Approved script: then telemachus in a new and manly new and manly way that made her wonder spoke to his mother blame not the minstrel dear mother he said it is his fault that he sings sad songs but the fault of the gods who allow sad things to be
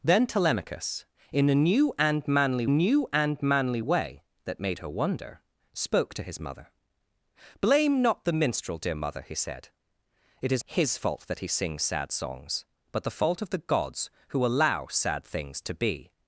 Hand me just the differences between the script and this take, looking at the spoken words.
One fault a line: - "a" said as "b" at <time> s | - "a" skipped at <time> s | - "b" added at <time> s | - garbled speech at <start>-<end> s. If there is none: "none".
none